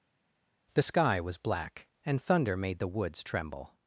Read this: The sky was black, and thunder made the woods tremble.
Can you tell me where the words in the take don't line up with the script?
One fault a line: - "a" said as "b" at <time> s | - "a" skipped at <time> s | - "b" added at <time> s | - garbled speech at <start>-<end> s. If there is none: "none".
none